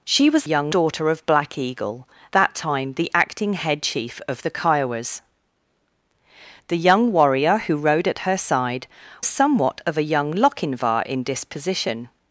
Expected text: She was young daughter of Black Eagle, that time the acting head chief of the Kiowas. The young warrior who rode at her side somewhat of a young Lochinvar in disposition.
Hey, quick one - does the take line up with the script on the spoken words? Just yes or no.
yes